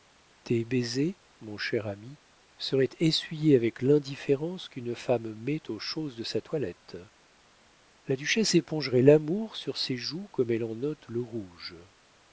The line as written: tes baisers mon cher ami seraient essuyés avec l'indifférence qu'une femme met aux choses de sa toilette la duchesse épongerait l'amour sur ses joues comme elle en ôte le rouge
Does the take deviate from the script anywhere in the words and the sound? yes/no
no